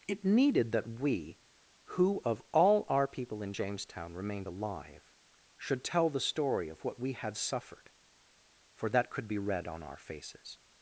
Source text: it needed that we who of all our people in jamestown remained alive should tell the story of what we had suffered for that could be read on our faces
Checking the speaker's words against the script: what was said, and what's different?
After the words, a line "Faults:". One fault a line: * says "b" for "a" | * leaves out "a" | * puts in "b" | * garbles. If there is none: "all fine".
it needed that we who of all our people in jamestown remained alive should tell the story of what we had suffered for that could be read on our faces
Faults:
all fine